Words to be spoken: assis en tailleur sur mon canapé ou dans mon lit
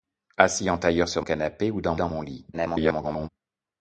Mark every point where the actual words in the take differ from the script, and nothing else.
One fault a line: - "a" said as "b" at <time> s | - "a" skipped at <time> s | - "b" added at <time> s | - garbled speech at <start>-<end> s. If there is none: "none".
- "mon" skipped at 1.2 s
- "dans" added at 1.9 s
- garbled speech at 2.5-3.3 s